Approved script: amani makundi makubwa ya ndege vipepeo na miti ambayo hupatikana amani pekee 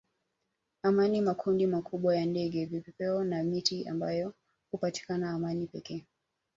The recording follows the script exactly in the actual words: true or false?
true